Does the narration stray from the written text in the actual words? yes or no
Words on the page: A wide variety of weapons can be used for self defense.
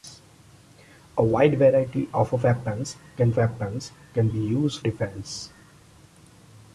yes